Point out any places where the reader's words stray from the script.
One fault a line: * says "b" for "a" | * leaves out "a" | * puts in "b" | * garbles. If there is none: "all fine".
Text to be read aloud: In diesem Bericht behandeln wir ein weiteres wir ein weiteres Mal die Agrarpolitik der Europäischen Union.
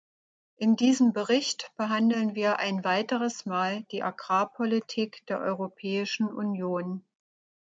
* leaves out "wir ein weiteres"